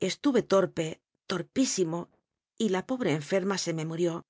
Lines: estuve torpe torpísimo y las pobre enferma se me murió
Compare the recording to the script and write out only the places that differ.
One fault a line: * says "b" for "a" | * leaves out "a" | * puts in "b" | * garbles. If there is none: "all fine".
* says "la" for "las"